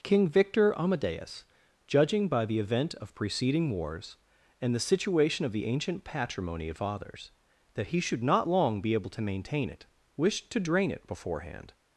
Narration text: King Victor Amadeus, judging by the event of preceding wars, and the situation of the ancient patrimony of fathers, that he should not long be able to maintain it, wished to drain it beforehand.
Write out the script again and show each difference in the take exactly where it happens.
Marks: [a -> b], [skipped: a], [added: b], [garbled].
King Victor Amadeus, judging by the event of preceding wars, and the situation of the ancient patrimony of fathers, that he should not long be able to maintain it, wished to drain it beforehand.